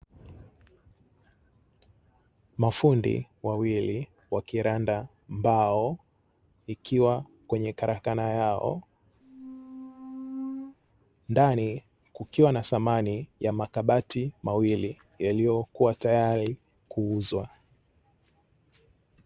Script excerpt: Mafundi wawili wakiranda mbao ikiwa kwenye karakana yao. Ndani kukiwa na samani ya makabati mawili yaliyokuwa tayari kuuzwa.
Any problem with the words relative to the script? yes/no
no